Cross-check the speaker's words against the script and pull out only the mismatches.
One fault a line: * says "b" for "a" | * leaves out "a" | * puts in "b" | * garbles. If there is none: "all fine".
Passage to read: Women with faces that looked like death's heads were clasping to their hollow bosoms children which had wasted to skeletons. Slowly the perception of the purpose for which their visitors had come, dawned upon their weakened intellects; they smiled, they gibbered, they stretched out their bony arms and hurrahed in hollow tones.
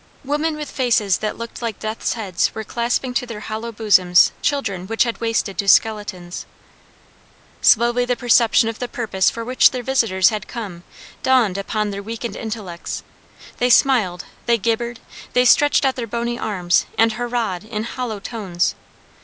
all fine